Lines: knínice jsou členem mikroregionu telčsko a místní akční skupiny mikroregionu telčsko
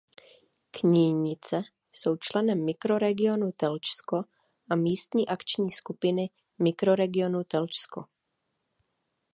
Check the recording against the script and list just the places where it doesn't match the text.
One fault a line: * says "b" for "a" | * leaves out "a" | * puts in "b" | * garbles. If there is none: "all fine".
all fine